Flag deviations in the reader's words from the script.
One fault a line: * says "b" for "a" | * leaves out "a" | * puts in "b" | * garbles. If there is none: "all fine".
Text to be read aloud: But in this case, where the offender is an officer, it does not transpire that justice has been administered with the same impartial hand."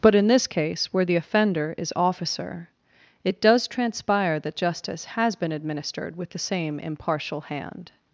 * leaves out "an"
* leaves out "not"